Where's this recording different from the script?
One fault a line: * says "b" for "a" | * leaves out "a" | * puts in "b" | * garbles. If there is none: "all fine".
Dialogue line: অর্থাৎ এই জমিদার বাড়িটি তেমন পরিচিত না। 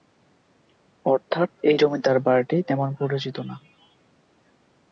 all fine